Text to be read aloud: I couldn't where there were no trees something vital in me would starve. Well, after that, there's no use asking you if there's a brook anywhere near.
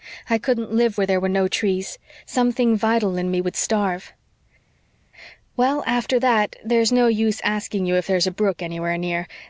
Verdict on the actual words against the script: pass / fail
fail